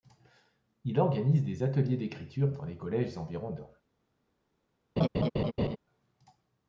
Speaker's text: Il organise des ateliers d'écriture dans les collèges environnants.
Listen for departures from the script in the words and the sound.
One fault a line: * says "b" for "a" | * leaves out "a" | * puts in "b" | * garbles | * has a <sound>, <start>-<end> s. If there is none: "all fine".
* has a laugh, 5.0-5.8 s